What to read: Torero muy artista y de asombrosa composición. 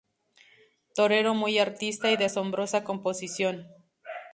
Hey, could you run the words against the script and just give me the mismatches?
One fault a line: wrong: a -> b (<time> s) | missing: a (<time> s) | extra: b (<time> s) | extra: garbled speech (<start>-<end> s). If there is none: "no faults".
no faults